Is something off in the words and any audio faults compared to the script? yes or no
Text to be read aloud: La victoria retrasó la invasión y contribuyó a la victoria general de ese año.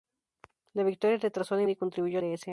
yes